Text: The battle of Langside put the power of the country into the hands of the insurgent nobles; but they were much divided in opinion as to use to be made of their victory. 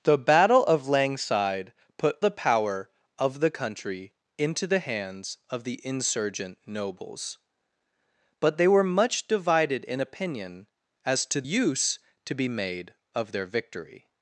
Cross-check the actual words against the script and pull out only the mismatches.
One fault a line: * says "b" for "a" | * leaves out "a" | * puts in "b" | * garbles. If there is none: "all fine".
all fine